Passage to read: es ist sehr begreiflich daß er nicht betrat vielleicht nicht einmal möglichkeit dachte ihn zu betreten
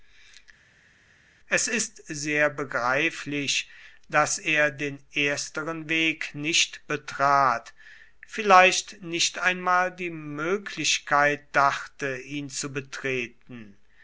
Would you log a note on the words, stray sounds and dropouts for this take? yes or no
yes